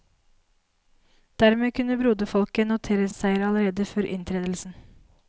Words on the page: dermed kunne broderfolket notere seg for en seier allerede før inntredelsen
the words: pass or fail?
fail